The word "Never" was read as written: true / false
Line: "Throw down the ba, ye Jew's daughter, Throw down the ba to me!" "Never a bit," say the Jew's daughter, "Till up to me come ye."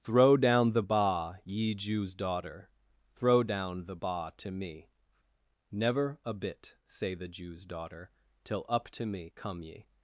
true